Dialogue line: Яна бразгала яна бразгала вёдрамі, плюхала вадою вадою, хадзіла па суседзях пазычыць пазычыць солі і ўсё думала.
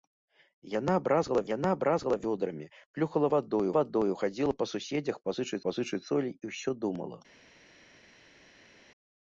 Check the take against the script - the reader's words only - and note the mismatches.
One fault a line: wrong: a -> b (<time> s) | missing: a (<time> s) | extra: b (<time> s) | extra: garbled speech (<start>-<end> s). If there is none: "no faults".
no faults